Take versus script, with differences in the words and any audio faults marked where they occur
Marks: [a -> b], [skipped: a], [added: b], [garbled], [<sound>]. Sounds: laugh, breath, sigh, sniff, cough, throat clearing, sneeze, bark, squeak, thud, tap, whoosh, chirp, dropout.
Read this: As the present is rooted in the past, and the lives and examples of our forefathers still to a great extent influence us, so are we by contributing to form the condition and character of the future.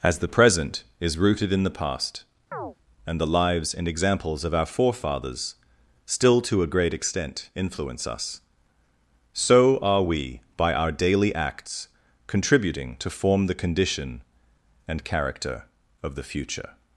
As the present is rooted in the past, [chirp] and the lives and examples of our forefathers still to a great extent influence us, so are we by [added: our daily acts] contributing to form the condition and character of the future.